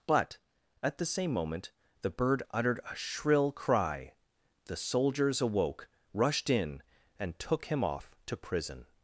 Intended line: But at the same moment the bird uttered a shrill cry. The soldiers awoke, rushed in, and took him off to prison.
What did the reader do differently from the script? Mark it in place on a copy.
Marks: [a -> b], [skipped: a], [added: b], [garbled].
But at the same moment the bird uttered a shrill cry. The soldiers awoke, rushed in, and took him off to prison.